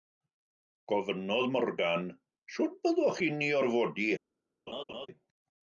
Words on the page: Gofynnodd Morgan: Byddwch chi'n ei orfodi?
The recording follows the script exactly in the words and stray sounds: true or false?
false